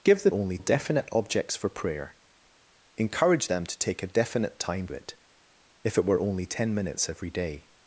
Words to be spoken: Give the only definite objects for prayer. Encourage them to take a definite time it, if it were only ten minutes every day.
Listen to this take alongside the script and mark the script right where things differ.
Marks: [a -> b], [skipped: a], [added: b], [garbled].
Give the only definite objects for prayer. Encourage them to take a definite time it, if it were only ten minutes every day.